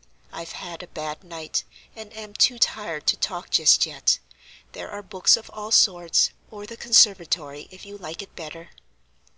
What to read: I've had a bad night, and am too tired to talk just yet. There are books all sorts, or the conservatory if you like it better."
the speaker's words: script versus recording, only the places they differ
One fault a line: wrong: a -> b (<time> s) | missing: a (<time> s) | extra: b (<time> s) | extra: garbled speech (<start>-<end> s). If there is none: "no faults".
extra: of (5.4 s)